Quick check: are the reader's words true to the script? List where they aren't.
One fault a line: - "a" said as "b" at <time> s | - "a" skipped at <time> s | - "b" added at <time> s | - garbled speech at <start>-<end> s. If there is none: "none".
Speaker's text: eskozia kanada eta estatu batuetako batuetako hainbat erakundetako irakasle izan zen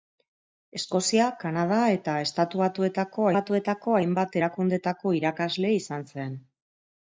none